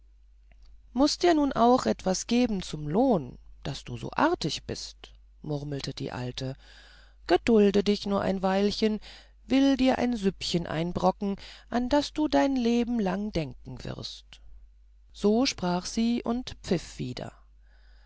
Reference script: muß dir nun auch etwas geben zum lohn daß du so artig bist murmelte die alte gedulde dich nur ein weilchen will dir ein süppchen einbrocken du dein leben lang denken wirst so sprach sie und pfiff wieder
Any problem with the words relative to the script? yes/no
yes